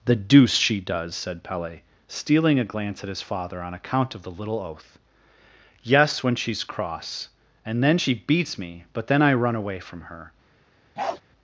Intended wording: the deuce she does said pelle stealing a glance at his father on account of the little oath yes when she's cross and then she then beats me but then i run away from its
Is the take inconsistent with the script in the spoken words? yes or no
yes